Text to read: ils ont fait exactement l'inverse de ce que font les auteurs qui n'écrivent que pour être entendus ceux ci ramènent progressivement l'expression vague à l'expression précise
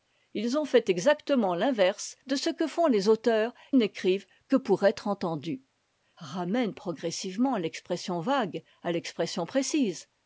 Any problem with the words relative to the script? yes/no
yes